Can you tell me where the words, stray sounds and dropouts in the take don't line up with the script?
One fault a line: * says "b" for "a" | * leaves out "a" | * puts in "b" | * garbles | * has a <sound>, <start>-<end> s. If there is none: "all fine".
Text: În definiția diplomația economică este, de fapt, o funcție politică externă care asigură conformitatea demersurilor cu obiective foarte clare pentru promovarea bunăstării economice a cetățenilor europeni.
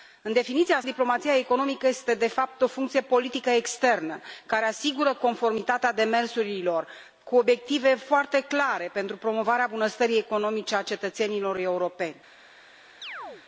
* has a chirp, 13.0-13.4 s